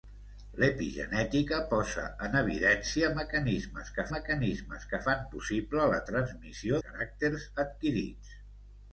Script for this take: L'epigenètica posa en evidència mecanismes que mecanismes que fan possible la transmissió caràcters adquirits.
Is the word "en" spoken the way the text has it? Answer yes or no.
yes